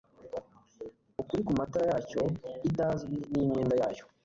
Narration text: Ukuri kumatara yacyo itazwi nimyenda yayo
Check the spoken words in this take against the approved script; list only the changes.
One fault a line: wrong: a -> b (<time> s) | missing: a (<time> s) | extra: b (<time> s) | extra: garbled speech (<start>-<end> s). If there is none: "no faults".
no faults